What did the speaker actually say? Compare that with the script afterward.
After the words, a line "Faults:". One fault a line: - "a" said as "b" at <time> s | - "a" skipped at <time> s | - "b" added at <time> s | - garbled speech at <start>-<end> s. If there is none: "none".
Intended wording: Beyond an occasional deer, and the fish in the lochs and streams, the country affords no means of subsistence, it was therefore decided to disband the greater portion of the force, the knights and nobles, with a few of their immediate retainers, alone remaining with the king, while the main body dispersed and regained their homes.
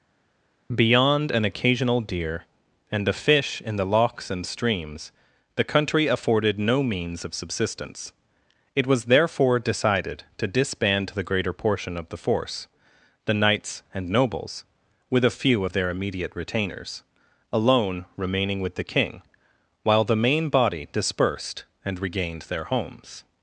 Beyond an occasional deer, and the fish in the lochs and streams, the country afforded no means of subsistence, it was therefore decided to disband the greater portion of the force, the knights and nobles, with a few of their immediate retainers, alone remaining with the king, while the main body dispersed and regained their homes.
Faults:
- "affords" said as "afforded" at 6.1 s